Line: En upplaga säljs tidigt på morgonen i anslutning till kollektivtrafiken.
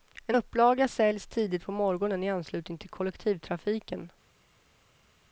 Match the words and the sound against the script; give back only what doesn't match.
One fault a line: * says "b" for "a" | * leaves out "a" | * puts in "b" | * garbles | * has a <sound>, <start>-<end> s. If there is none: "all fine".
all fine